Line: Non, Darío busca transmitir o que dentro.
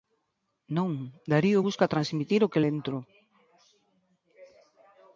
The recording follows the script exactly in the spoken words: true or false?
true